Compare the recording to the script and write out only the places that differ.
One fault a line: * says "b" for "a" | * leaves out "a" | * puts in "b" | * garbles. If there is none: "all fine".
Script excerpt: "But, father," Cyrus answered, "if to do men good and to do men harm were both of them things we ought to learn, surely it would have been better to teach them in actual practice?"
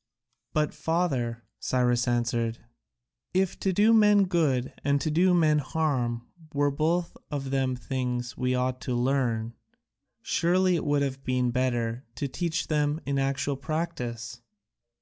all fine